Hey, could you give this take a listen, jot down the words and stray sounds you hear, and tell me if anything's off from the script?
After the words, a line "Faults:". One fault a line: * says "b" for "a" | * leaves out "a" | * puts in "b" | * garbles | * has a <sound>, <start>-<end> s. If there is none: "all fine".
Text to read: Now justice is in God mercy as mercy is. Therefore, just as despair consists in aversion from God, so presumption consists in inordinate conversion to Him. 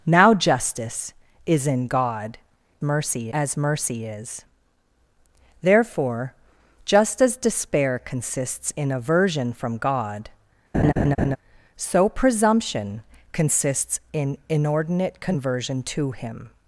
Now justice is in God mercy as mercy is. Therefore, just as despair consists in aversion from God, so presumption consists in inordinate conversion to Him.
Faults:
* has a laugh, 10.7-11.4 s